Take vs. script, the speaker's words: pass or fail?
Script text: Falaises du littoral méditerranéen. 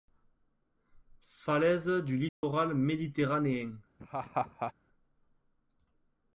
pass